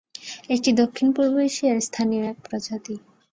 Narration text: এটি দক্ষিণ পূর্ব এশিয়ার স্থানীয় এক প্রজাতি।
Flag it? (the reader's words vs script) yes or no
no